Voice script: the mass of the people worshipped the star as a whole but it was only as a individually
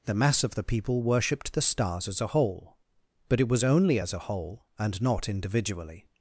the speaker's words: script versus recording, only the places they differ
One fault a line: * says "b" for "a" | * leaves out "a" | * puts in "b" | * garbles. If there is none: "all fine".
* says "stars" for "star"
* puts in "whole and not"